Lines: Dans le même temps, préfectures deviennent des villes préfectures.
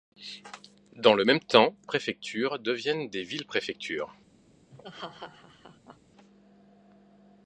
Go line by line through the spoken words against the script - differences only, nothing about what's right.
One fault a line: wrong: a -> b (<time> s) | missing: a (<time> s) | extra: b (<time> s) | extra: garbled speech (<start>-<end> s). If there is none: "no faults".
no faults